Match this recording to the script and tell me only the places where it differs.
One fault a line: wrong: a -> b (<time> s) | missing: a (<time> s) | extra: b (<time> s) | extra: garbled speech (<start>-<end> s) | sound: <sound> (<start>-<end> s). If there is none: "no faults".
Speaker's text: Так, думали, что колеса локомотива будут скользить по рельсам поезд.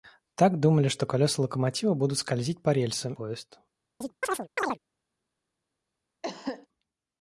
sound: chirp (4.0-4.8 s)
sound: cough (6.2-6.7 s)